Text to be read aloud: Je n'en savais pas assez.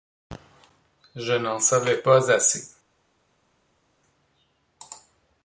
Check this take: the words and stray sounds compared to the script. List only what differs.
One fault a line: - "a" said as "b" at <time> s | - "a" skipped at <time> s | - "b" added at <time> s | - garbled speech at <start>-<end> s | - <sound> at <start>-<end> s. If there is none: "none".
none